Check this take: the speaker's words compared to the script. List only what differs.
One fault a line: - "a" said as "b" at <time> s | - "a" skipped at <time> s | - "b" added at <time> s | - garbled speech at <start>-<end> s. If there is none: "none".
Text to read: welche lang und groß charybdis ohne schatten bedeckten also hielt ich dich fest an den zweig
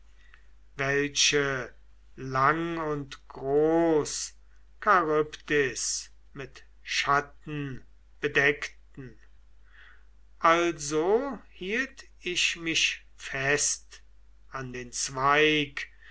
- "ohne" said as "mit" at 6.3 s
- "dich" said as "mich" at 12.6 s